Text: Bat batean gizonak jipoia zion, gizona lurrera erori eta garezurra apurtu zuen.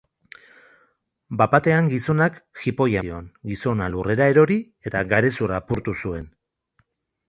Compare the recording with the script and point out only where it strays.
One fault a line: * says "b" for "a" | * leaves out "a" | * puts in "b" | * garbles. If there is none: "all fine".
all fine